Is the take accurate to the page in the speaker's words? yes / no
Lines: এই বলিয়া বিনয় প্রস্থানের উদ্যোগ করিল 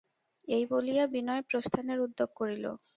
yes